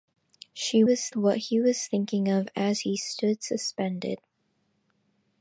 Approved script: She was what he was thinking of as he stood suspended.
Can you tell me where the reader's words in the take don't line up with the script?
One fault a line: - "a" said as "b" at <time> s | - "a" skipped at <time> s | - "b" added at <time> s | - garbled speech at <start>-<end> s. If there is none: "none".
none